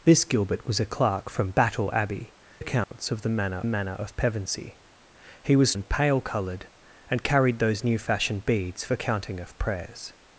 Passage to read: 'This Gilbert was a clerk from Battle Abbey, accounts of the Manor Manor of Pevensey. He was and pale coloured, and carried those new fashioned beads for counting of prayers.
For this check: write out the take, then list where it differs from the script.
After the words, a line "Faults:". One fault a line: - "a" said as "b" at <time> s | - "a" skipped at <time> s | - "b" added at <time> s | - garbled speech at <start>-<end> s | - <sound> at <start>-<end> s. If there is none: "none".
'This Gilbert was a clerk from Battle Abbey, accounts of the Manor Manor of Pevensey. He was and pale coloured, and carried those new fashioned beads for counting of prayers.
Faults:
- dropout at 2.8-2.9 s